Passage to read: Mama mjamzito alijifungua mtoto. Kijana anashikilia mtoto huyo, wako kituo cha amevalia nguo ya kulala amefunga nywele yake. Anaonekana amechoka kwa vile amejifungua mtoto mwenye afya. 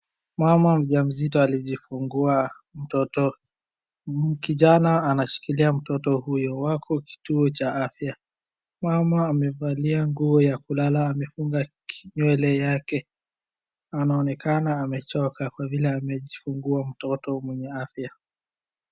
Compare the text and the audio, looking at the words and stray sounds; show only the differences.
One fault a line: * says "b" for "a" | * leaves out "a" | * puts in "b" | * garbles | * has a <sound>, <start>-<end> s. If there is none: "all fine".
* puts in "afya Mama"